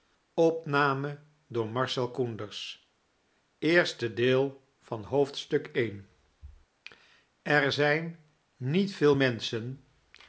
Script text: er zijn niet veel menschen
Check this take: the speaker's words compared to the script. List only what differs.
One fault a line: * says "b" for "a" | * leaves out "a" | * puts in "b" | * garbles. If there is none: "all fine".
all fine